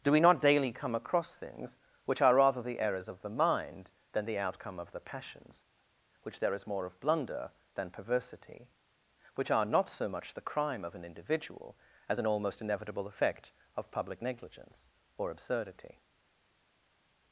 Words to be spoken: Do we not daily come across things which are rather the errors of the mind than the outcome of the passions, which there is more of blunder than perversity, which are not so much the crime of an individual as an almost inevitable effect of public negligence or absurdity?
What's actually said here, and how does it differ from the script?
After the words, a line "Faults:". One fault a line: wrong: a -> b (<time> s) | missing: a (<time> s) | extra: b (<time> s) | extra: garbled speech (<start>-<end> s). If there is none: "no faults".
Do we not daily come across things which are rather the errors of the mind than the outcome of the passions, which there is more of blunder than perversity, which are not so much the crime of an individual as an almost inevitable effect of public negligence or absurdity?
Faults:
no faults